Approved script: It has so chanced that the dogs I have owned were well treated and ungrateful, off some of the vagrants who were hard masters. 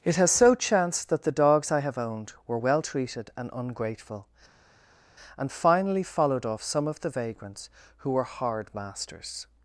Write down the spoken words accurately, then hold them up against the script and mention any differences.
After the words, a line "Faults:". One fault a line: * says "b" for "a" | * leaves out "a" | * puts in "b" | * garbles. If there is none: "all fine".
It has so chanced that the dogs I have owned were well treated and ungrateful, and finally followed off some of the vagrants who were hard masters.
Faults:
* puts in "and finally followed"